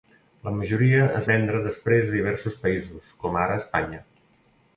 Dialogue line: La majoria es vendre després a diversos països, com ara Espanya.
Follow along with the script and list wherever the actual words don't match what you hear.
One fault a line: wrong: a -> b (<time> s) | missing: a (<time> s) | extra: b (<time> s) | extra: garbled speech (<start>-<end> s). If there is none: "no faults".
no faults